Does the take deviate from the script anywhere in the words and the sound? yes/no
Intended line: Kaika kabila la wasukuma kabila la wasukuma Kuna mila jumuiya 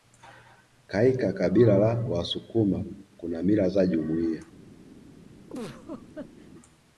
yes